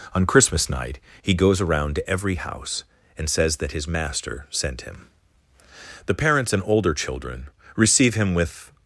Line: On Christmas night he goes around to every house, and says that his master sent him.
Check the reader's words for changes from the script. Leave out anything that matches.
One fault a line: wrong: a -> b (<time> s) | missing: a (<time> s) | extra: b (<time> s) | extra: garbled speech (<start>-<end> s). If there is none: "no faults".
extra: The parents and older children receive him with (6.1 s)